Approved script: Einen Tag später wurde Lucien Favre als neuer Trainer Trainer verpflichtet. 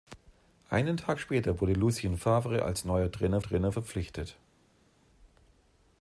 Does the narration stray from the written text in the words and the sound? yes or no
no